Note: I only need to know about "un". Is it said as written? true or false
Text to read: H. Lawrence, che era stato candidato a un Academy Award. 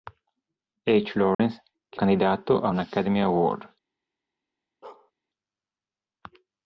true